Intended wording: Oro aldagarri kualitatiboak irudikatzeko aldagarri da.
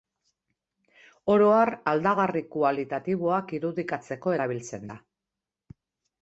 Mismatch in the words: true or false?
true